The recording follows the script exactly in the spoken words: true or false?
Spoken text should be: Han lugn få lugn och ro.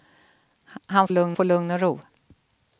true